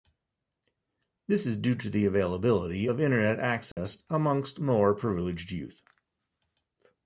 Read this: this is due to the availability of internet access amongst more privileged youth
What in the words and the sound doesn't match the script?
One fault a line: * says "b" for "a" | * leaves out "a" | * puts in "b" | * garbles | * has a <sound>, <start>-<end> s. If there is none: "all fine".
* has a dropout, 3.7-3.8 s